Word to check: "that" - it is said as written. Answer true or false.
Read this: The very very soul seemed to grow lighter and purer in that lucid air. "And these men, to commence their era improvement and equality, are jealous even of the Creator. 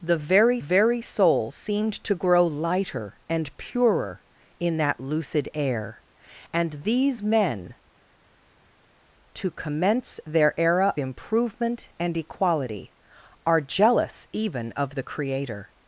true